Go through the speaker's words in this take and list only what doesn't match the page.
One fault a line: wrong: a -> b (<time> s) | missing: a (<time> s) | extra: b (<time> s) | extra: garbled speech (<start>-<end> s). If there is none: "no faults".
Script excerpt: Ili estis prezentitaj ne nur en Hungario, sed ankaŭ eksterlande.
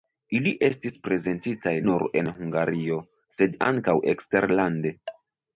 missing: ne (1.8 s)